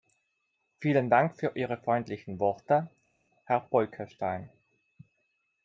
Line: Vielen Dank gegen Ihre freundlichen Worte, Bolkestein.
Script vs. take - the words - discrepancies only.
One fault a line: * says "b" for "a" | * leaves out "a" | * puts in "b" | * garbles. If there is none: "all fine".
* says "für" for "gegen"
* puts in "Herr"